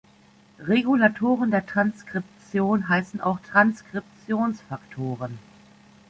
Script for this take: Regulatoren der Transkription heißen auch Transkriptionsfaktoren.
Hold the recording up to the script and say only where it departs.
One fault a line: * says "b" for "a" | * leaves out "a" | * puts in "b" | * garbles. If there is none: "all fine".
all fine